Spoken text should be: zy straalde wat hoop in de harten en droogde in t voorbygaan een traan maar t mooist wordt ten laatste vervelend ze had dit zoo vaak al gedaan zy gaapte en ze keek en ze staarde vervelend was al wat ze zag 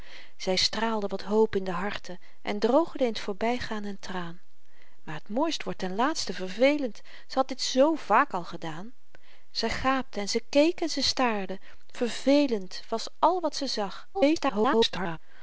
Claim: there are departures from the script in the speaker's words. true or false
true